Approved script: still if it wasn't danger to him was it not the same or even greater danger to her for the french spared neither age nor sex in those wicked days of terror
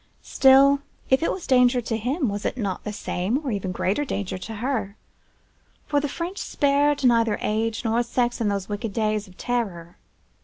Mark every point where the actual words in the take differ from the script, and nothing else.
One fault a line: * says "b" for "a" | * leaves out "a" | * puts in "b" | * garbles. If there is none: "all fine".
* says "was" for "wasn't"